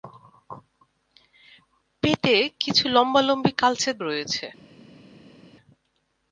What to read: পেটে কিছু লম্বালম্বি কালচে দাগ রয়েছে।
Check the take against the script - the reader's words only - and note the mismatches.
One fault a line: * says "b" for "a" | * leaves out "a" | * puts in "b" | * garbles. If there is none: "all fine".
* leaves out "দাগ"